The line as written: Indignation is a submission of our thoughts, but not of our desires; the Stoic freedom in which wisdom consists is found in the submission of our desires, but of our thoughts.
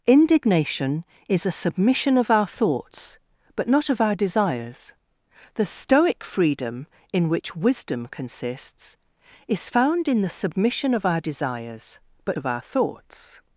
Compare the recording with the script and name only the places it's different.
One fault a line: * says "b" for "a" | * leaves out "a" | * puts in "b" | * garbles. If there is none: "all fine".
all fine